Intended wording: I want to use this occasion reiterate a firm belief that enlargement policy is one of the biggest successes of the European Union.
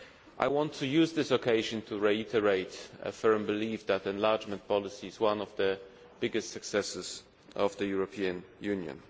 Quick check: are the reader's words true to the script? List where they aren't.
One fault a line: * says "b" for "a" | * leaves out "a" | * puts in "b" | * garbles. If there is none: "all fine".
* puts in "to"